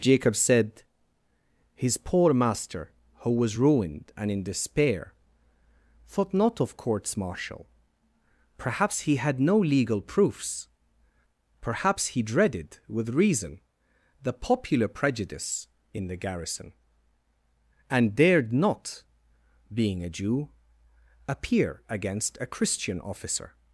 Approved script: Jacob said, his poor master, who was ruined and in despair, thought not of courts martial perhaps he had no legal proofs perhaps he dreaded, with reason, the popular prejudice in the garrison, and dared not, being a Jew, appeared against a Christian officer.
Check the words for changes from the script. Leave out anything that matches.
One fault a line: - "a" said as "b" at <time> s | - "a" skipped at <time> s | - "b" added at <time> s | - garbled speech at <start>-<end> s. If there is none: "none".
- "appeared" said as "appear" at 21.3 s